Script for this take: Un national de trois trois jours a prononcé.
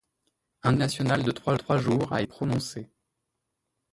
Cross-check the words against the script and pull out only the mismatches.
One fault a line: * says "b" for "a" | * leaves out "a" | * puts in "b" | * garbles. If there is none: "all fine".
all fine